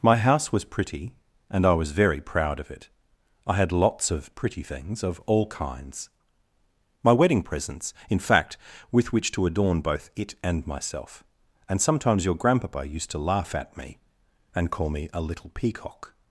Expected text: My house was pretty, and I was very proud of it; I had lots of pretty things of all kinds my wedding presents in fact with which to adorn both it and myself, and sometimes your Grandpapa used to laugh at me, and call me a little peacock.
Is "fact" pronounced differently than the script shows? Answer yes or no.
no